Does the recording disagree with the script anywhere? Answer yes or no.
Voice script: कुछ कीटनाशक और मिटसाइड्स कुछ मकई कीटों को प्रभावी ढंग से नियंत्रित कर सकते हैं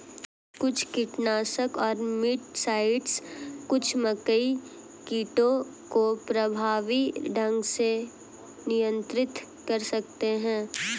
no